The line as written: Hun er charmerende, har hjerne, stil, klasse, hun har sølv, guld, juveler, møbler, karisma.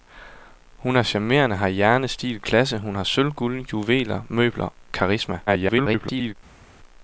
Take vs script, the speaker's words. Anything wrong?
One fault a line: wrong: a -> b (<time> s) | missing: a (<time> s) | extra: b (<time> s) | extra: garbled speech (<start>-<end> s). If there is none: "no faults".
extra: garbled speech (5.5-6.4 s)